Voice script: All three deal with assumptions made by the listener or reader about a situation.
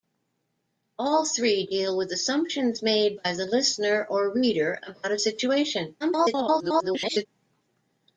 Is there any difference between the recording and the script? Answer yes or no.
yes